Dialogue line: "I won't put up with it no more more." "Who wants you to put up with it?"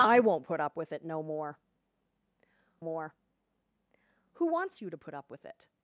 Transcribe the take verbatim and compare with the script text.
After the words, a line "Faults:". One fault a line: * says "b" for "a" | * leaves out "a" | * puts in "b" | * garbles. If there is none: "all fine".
"I won't put up with it no more more." "Who wants you to put up with it?"
Faults:
all fine